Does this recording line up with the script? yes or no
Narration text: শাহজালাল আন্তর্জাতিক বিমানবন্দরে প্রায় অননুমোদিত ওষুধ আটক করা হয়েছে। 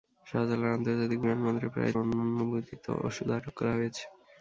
yes